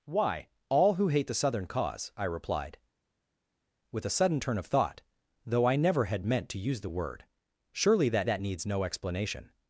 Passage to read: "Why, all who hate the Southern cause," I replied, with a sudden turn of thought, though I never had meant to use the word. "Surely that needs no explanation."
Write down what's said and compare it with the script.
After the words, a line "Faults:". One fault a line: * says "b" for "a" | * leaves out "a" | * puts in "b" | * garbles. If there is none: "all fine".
"Why, all who hate the Southern cause," I replied, with a sudden turn of thought, though I never had meant to use the word. "Surely that that needs no explanation."
Faults:
* puts in "that"